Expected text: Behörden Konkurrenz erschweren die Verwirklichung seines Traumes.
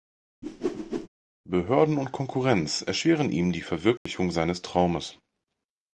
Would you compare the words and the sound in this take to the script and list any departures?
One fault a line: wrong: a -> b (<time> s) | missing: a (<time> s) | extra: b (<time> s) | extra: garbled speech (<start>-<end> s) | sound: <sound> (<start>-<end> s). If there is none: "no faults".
sound: whoosh (0.4-1.1 s)
extra: und (2.0 s)
extra: ihm (3.3 s)
sound: dropout (4.0-4.1 s)